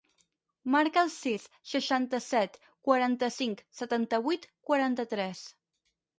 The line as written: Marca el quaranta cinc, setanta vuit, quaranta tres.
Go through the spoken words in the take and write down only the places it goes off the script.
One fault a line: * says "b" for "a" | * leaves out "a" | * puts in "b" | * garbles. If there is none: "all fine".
* puts in "sis seixanta set"